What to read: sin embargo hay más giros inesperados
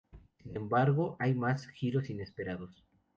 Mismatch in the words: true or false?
false